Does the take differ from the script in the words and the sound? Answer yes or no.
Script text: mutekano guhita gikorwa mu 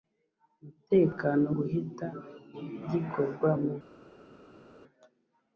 no